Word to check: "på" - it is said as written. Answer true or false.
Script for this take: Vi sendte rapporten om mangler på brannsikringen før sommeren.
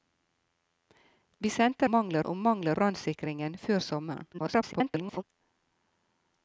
false